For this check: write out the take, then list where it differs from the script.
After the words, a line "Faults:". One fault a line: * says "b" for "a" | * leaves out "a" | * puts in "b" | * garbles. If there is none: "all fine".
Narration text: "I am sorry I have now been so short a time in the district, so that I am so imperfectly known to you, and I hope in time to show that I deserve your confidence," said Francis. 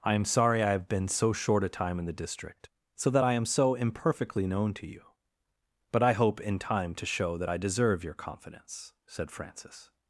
"I am sorry I have been so short a time in the district, so that I am so imperfectly known to you, but I hope in time to show that I deserve your confidence," said Francis.
Faults:
* leaves out "now"
* says "but" for "and"